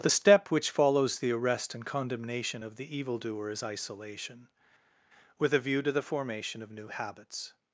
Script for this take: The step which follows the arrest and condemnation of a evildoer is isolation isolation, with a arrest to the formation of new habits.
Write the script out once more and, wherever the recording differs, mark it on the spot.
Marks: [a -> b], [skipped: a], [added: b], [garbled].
The step which follows the arrest and condemnation of [a -> the] evildoer is isolation [skipped: isolation,] with a [arrest -> view] to the formation of new habits.